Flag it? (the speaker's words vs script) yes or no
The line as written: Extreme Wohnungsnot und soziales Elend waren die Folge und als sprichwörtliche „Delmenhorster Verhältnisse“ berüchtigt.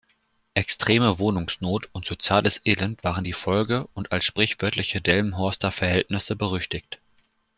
no